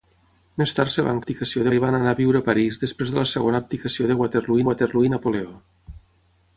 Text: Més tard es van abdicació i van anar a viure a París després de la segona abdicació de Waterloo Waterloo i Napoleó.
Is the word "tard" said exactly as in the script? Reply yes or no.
yes